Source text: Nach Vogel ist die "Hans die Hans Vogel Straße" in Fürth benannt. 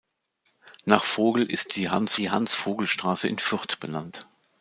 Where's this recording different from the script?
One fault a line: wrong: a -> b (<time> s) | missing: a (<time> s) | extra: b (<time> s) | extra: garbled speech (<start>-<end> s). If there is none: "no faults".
no faults